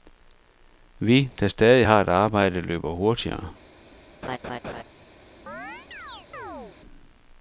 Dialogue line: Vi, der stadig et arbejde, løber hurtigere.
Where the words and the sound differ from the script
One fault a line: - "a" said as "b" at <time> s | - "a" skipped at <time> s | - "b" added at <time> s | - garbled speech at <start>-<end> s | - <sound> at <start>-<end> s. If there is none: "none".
- "har" added at 1.8 s
- laugh at 4.2-4.8 s
- chirp at 5.5-6.8 s